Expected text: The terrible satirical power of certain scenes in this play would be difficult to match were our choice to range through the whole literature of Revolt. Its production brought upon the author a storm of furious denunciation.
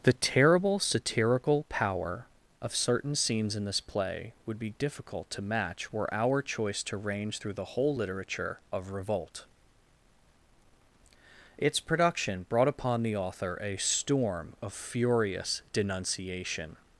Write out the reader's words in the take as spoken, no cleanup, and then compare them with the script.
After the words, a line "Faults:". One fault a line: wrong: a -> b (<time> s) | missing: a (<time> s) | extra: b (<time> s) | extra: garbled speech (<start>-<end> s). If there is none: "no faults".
The terrible satirical power of certain scenes in this play would be difficult to match were our choice to range through the whole literature of Revolt. Its production brought upon the author a storm of furious denunciation.
Faults:
no faults